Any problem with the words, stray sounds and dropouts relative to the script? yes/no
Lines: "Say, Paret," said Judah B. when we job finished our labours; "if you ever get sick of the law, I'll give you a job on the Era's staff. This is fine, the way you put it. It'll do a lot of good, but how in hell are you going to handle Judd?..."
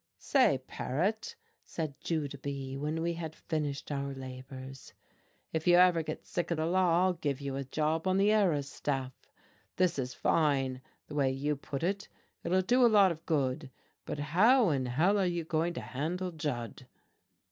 yes